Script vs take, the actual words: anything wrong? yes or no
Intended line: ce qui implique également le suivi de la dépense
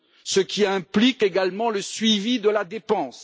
no